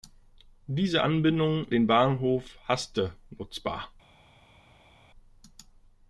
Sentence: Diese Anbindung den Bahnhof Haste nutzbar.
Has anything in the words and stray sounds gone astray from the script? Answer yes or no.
no